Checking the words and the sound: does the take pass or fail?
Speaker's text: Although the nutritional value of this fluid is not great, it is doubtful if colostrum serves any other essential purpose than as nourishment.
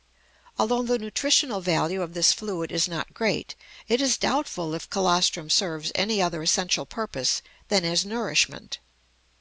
pass